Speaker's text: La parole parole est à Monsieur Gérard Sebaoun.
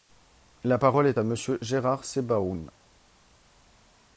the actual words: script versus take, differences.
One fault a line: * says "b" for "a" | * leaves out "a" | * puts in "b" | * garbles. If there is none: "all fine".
* leaves out "parole"